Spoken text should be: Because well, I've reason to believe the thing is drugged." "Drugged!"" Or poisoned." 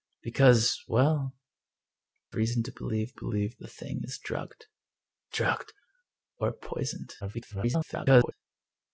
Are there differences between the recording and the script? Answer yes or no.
yes